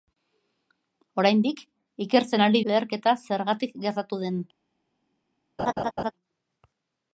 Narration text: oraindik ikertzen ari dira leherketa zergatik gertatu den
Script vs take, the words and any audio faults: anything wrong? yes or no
yes